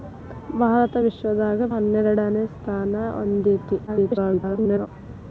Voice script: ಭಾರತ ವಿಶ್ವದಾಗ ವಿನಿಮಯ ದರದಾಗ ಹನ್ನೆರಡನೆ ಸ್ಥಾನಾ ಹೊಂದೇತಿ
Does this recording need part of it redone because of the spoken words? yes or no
yes